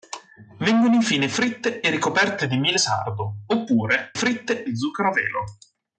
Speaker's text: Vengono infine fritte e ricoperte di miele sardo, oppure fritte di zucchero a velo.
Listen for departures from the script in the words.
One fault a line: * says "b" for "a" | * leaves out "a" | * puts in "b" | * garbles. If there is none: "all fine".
all fine